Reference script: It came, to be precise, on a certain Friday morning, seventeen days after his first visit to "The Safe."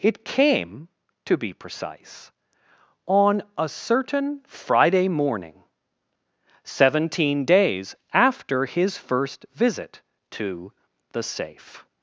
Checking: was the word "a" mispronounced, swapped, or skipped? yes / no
no